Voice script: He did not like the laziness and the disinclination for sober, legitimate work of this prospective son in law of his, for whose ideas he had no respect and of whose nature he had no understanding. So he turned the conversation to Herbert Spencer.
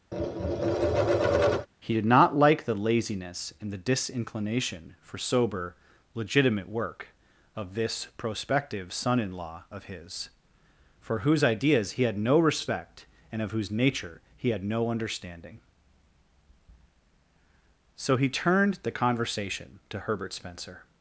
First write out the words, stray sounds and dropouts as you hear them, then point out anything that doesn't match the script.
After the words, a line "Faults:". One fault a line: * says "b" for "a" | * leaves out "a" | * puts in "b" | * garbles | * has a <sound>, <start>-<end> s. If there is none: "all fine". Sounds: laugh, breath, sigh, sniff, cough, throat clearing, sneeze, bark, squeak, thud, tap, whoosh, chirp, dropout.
He did not like the laziness and the disinclination for sober, legitimate work of this prospective son in law of his, for whose ideas he had no respect and of whose nature he had no understanding. So he turned the conversation to Herbert Spencer.
Faults:
* has a tap, 0.1-1.7 s